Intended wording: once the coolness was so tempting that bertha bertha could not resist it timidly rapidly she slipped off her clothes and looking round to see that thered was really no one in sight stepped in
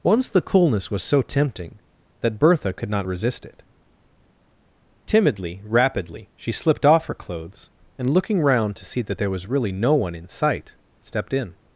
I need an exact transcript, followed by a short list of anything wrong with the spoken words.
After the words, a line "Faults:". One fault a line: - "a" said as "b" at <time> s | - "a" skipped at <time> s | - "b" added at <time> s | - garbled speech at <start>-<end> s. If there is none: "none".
once the coolness was so tempting that bertha could not resist it timidly rapidly she slipped off her clothes and looking round to see that there was really no one in sight stepped in
Faults:
- "bertha" skipped at 2.7 s
- "thered" said as "there" at 9.2 s